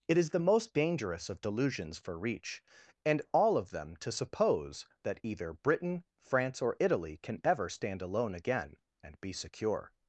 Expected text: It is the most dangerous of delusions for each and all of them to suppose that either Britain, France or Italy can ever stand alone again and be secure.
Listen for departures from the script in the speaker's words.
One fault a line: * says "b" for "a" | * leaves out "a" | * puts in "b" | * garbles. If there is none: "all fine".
* says "reach" for "each"